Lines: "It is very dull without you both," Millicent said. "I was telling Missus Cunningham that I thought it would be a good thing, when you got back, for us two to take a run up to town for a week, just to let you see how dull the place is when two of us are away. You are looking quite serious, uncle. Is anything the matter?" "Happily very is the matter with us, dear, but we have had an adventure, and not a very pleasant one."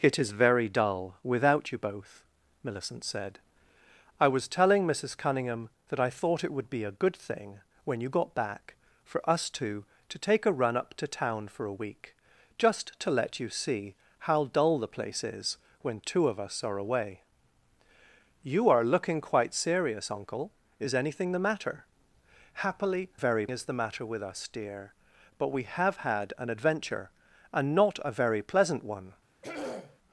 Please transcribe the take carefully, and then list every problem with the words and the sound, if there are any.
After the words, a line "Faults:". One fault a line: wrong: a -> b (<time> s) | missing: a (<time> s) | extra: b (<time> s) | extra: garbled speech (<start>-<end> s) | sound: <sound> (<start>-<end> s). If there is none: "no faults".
"It is very dull without you both," Millicent said. "I was telling Missus Cunningham that I thought it would be a good thing, when you got back, for us two to take a run up to town for a week, just to let you see how dull the place is when two of us are away. You are looking quite serious, uncle. Is anything the matter?" "Happily very is the matter with us, dear, but we have had an adventure, and not a very pleasant one."
Faults:
sound: throat clearing (29.4-30.0 s)